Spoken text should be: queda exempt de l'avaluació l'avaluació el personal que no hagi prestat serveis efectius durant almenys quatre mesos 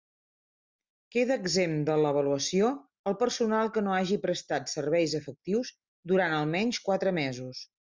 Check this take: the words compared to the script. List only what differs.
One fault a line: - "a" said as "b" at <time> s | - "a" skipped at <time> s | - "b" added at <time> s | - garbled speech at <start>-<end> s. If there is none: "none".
- "l'avaluació" skipped at 2.7 s